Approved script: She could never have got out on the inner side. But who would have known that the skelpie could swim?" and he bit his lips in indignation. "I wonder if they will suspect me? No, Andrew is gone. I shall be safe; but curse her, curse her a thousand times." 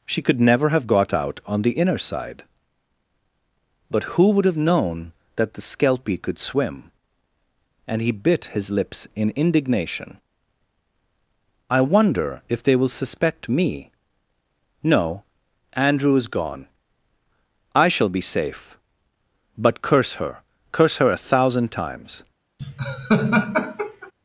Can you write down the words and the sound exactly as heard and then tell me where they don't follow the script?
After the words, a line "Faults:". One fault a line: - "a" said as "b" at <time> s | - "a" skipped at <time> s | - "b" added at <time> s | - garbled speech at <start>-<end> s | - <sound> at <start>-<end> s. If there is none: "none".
She could never have got out on the inner side. But who would have known that the skelpie could swim?" and he bit his lips in indignation. "I wonder if they will suspect me? No, Andrew is gone. I shall be safe; but curse her, curse her a thousand times."
Faults:
- laugh at 22.6-24.1 s